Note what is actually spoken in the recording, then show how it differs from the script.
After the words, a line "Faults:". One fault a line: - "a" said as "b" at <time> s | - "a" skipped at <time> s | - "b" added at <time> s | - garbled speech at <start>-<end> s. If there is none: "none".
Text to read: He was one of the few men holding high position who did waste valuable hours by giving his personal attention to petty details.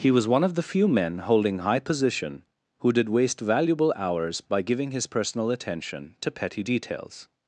He was one of the few men holding high position who did waste valuable hours by giving his personal attention to petty details.
Faults:
none